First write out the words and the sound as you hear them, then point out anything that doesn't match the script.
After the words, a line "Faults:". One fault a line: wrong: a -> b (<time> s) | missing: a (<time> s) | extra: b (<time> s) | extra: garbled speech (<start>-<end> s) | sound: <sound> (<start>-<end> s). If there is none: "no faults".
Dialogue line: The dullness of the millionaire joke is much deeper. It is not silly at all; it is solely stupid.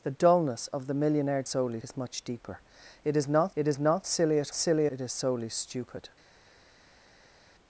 The dullness of the millionaire solely is much deeper. It is not it is not silly at silly; it is solely stupid.
Faults:
wrong: joke -> solely (1.4 s)
extra: it is not (3.5 s)
wrong: all -> silly (4.5 s)